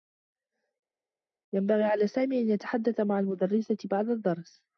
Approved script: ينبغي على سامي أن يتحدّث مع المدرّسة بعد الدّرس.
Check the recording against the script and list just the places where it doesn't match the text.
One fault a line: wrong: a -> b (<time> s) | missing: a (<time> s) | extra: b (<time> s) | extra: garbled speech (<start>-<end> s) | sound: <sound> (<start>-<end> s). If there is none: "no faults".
no faults